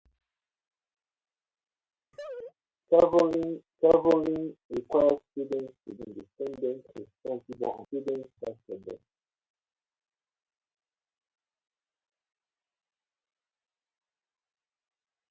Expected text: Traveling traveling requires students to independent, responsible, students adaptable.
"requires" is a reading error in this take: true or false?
false